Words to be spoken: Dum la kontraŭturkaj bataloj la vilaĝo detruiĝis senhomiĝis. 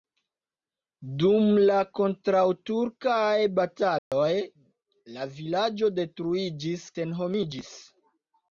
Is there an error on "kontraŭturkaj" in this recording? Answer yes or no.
no